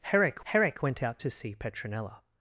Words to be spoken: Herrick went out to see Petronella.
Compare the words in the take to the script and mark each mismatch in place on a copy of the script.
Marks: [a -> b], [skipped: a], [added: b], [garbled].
Herrick [added: herrick] went out to see Petronella.